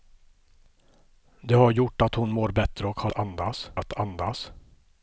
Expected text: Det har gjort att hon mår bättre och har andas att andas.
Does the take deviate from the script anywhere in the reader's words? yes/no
no